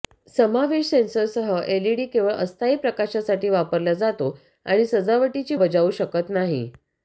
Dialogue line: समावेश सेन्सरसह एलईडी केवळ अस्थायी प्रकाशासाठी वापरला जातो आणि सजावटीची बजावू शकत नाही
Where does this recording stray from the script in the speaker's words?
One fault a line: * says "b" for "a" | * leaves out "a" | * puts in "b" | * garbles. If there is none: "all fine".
all fine